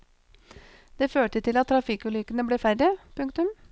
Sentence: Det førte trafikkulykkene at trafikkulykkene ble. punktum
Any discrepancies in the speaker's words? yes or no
yes